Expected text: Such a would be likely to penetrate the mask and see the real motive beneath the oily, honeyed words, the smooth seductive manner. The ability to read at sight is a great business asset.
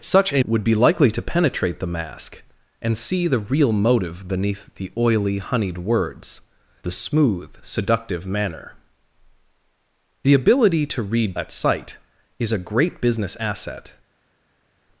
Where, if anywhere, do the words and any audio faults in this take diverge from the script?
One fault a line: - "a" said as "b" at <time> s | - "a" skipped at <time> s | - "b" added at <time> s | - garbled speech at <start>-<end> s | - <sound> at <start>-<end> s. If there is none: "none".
none